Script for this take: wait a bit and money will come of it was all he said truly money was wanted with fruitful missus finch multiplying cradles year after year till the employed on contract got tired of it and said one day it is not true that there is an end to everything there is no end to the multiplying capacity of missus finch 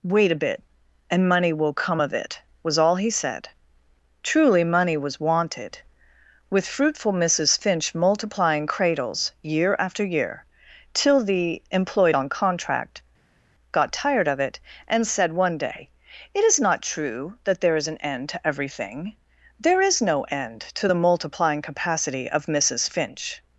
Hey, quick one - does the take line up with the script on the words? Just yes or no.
yes